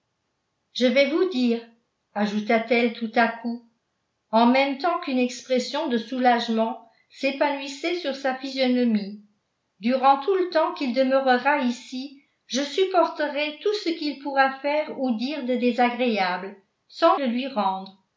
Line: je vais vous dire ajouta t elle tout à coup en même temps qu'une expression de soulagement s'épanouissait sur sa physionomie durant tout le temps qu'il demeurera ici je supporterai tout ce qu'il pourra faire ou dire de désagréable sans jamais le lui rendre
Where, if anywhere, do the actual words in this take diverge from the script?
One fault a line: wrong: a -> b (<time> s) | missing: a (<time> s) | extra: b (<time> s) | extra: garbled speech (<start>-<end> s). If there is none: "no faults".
missing: jamais (17.2 s)